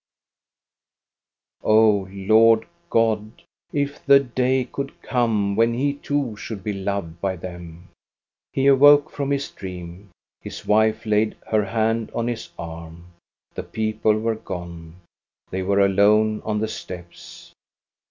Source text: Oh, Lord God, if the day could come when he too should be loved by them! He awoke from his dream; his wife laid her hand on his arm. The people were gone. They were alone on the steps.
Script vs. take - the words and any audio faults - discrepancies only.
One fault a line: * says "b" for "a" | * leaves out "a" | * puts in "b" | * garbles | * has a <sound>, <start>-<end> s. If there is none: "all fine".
all fine